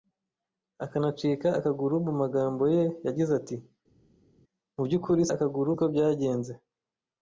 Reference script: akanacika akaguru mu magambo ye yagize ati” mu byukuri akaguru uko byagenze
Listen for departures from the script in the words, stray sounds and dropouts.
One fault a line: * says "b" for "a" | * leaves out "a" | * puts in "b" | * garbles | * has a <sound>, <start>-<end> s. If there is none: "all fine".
all fine